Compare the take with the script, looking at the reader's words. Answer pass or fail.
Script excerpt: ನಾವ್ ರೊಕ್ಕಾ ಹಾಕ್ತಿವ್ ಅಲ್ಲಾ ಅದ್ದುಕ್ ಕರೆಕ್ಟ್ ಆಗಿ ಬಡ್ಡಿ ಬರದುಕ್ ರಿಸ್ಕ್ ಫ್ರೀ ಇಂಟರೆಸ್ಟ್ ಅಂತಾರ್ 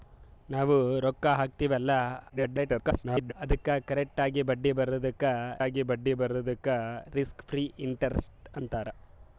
fail